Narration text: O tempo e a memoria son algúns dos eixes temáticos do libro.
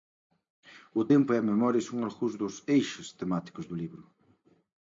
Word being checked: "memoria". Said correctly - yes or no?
yes